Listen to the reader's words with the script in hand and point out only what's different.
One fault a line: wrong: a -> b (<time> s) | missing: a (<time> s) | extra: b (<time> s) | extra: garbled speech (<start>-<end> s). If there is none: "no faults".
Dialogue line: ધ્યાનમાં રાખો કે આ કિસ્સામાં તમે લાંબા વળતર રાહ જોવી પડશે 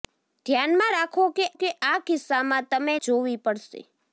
extra: કે (1.5 s)
missing: લાંબા વળતર રાહ (2.9 s)